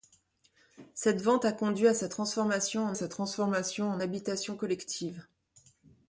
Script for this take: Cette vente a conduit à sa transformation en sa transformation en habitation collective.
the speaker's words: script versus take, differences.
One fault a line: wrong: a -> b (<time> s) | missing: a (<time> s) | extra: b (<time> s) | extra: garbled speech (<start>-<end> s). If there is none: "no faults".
no faults